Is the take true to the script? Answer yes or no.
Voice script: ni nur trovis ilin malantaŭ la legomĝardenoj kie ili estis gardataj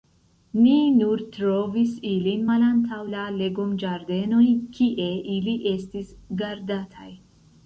yes